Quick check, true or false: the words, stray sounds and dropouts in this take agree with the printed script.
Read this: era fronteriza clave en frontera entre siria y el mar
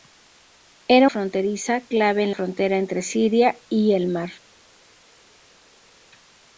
true